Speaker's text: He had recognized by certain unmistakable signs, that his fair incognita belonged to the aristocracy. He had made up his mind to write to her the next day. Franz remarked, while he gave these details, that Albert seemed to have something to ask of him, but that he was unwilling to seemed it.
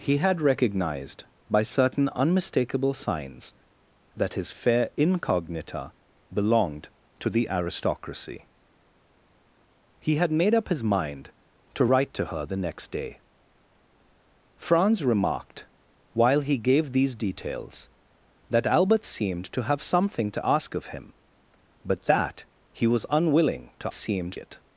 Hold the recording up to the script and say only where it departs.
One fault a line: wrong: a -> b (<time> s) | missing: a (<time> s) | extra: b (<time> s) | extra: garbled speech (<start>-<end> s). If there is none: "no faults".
no faults